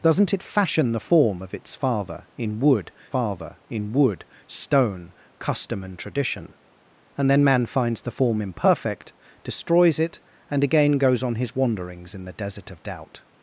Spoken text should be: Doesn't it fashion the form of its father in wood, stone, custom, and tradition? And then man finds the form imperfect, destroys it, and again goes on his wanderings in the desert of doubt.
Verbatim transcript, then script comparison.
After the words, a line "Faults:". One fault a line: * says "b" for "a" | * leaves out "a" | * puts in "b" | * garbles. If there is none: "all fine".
Doesn't it fashion the form of its father in wood father in wood, stone, custom, and tradition? And then man finds the form imperfect, destroys it, and again goes on his wanderings in the desert of doubt.
Faults:
* puts in "father in wood"